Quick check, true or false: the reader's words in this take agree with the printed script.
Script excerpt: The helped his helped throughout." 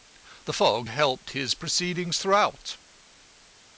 false